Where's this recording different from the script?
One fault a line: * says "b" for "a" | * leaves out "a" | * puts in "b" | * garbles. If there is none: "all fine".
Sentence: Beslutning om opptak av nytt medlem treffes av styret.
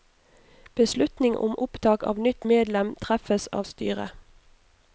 all fine